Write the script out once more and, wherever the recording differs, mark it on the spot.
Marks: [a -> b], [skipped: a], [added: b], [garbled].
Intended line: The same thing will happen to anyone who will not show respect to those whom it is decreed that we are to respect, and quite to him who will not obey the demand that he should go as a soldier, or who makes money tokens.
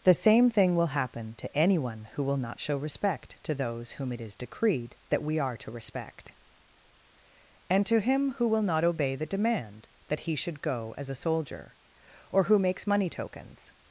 The same thing will happen to anyone who will not show respect to those whom it is decreed that we are to respect, and [skipped: quite] to him who will not obey the demand that he should go as a soldier, or who makes money tokens.